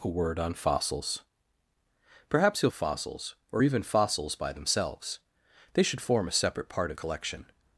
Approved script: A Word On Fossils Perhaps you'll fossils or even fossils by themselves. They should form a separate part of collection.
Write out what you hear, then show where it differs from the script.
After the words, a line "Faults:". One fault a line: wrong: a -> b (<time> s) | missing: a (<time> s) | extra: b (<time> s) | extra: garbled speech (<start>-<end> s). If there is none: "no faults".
A Word On Fossils Perhaps you'll fossils or even fossils by themselves. They should form a separate part of collection.
Faults:
no faults